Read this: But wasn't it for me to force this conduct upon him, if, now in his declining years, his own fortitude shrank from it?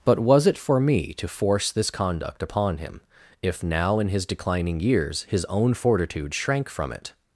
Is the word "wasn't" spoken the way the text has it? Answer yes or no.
no